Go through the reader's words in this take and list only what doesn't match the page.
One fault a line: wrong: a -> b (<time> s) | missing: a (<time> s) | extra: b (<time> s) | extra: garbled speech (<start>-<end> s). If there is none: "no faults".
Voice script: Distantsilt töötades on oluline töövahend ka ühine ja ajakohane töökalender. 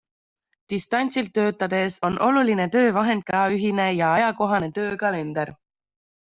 no faults